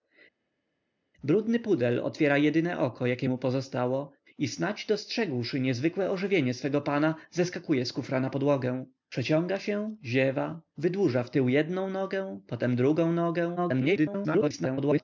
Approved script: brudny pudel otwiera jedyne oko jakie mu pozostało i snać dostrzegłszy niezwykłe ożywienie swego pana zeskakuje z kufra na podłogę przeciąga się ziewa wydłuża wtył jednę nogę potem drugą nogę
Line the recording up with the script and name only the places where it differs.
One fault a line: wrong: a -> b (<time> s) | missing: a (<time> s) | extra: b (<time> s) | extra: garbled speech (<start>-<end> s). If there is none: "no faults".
extra: garbled speech (13.6-15.0 s)